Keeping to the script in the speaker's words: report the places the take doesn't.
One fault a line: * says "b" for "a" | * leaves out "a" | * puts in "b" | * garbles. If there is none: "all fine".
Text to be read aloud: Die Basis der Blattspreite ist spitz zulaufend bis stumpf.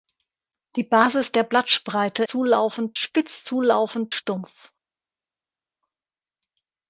* says "zulaufend" for "ist"
* leaves out "bis"